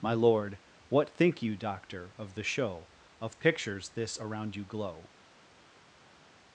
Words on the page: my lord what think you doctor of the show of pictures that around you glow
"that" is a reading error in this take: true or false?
true